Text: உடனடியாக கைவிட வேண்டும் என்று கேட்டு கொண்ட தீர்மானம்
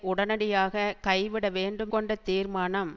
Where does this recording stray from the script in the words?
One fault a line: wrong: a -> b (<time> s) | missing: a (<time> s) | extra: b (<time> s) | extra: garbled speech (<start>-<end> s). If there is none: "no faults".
missing: என்று கேட்டு (1.9 s)